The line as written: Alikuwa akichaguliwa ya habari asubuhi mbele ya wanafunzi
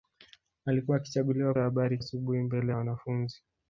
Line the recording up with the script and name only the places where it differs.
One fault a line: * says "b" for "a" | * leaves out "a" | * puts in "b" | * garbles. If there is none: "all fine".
all fine